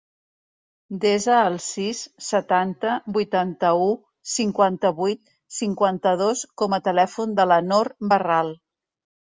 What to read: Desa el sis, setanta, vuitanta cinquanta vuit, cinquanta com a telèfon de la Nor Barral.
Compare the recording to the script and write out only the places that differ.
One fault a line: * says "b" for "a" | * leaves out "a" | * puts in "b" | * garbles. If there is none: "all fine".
* puts in "u"
* puts in "dos"